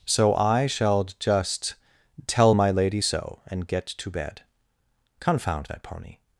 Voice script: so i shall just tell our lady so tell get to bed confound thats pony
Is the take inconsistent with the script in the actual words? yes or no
yes